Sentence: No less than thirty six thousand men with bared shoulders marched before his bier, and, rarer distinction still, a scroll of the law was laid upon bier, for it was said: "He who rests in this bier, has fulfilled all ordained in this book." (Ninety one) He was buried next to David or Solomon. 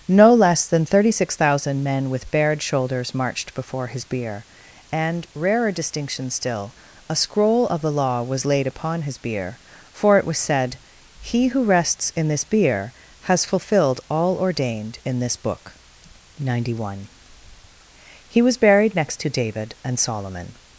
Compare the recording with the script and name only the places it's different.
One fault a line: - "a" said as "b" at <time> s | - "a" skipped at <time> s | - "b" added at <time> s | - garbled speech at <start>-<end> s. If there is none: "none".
- "his" added at 9.0 s
- "or" said as "and" at 19.8 s